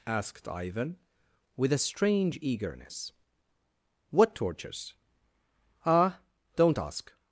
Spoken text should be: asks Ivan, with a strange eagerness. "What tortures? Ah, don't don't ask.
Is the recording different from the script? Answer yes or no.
yes